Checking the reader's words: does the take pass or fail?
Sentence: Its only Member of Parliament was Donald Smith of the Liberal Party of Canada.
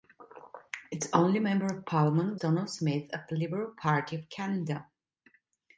fail